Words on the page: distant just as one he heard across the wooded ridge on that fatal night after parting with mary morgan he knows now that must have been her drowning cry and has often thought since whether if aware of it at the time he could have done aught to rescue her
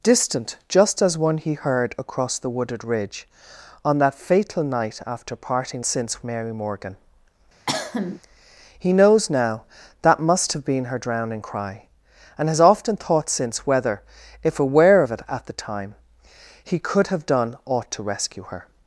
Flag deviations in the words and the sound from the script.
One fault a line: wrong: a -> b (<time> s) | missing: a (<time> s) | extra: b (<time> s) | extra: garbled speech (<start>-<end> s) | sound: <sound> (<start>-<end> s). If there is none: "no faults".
wrong: with -> since (5.8 s)
sound: cough (7.7-8.2 s)